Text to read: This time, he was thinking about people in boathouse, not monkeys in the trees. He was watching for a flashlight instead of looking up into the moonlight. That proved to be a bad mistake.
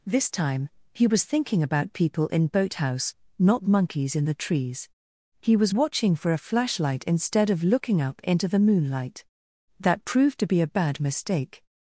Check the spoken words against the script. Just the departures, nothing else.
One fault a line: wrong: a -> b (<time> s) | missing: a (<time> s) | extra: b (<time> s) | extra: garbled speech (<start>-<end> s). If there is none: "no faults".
no faults